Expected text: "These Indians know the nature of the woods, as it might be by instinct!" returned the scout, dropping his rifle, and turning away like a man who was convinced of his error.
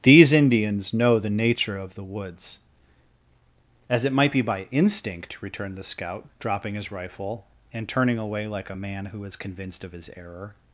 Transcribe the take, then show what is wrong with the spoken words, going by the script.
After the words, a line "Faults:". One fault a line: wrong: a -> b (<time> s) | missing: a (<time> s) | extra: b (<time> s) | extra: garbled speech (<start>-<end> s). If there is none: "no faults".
"These Indians know the nature of the woods, as it might be by instinct!" returned the scout, dropping his rifle, and turning away like a man who is convinced of his error.
Faults:
wrong: was -> is (9.3 s)